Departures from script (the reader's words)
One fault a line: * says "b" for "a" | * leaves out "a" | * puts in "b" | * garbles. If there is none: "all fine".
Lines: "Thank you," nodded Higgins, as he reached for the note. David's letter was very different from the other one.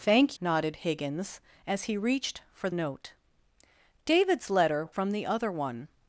* leaves out "you"
* leaves out "the"
* leaves out "was very different"